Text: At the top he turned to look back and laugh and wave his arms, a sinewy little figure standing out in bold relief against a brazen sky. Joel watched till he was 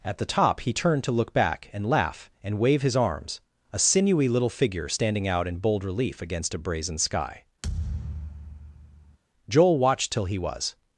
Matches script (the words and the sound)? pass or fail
fail